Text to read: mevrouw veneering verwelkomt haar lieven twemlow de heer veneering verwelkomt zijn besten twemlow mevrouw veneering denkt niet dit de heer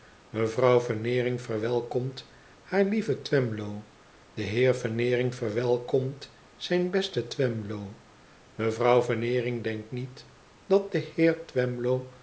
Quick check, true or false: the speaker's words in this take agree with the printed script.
false